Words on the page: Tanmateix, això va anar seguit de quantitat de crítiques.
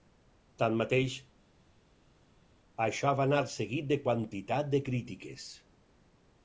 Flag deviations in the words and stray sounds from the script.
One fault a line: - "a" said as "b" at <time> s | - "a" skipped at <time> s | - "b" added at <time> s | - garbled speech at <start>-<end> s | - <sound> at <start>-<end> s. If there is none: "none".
none